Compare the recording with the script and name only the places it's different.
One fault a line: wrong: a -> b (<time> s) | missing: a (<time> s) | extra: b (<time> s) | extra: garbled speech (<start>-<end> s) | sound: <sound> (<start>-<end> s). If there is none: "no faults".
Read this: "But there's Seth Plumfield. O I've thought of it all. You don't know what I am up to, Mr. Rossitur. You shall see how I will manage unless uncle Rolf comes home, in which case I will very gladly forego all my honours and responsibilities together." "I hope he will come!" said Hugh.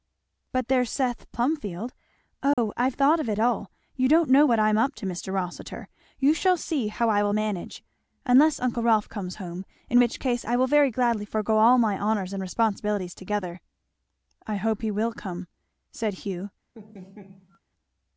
sound: dropout (2.5-2.6 s)
sound: laugh (16.7-17.6 s)